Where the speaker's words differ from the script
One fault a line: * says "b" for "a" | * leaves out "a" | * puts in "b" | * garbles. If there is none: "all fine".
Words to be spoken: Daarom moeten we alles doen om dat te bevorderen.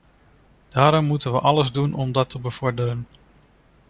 all fine